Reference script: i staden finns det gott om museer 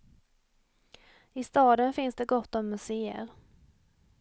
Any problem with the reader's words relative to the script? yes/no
no